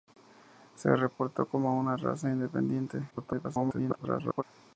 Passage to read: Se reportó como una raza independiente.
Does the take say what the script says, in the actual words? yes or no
no